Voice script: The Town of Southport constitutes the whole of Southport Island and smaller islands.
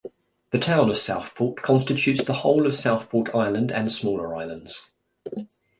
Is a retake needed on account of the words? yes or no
no